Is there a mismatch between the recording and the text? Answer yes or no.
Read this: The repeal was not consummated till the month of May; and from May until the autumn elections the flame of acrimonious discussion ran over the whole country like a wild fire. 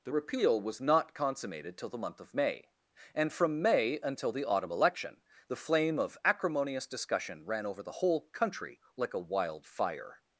yes